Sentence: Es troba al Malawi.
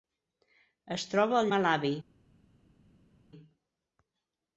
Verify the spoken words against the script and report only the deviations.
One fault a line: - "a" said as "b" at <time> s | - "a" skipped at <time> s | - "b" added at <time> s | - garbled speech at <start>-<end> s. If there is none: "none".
none